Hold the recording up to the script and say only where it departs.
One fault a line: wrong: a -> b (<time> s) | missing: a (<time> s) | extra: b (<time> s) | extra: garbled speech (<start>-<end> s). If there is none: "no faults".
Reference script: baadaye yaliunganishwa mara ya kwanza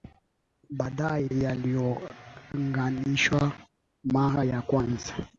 no faults